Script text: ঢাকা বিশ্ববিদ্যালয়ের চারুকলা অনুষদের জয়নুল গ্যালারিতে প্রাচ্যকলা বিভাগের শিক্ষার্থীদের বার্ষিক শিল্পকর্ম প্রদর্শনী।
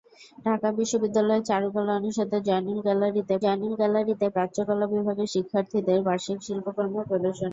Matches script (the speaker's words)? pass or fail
fail